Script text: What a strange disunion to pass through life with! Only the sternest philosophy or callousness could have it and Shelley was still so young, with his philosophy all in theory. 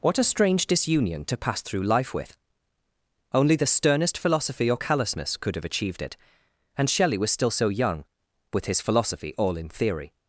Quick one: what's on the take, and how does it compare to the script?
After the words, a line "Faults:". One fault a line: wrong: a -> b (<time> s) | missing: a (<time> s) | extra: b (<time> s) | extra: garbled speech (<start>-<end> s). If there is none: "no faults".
What a strange disunion to pass through life with! Only the sternest philosophy or callousness could have achieved it and Shelley was still so young, with his philosophy all in theory.
Faults:
extra: achieved (5.7 s)